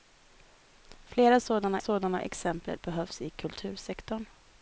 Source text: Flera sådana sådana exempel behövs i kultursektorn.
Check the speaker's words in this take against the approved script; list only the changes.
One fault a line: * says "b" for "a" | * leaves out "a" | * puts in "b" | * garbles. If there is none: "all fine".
all fine